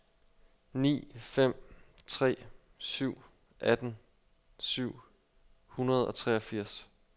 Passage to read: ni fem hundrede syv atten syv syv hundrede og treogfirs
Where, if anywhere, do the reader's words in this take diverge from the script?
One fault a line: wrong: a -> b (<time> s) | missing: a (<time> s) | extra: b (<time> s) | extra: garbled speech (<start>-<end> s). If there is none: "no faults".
wrong: hundrede -> tre (2.1 s)
missing: syv (5.0 s)